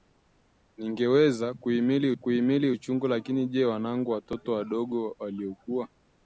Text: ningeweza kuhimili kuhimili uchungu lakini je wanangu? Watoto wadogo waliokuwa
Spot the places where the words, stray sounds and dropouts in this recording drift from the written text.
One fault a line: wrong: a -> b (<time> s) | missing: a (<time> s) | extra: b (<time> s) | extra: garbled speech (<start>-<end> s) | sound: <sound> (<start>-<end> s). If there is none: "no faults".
no faults